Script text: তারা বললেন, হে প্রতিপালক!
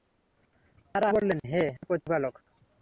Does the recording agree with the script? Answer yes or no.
yes